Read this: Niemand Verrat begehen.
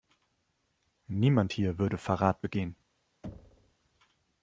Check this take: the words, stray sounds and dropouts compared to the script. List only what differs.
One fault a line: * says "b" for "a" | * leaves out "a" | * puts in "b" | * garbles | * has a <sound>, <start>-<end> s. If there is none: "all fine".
* puts in "hier würde"
* has a thud, 3.2-3.8 s